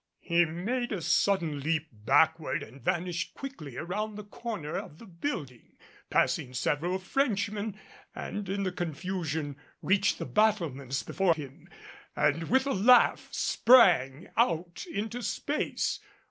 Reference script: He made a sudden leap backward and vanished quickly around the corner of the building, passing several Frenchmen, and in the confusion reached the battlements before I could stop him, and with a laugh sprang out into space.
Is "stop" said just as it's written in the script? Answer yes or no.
no